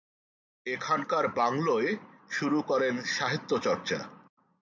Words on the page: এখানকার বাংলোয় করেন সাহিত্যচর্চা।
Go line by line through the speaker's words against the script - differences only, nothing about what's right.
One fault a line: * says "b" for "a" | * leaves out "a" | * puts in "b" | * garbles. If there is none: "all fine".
* puts in "শুরু"